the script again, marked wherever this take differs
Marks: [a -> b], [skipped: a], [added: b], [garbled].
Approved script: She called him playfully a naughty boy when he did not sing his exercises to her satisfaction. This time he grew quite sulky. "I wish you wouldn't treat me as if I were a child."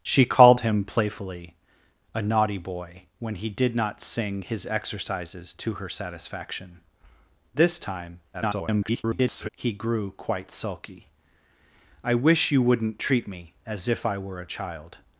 She called him playfully a naughty boy when he did not sing his exercises to her satisfaction. This time [garbled] he grew quite sulky. "I wish you wouldn't treat me as if I were a child."